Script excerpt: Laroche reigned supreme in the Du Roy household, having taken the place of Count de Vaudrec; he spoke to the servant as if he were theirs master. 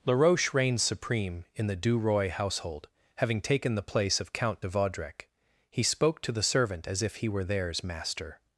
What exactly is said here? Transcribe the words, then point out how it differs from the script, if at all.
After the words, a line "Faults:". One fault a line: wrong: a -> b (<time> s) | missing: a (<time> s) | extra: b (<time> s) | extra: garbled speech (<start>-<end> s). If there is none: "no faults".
Laroche reigned supreme in the Du Roy household, having taken the place of Count de Vaudrec; he spoke to the servant as if he were theirs master.
Faults:
no faults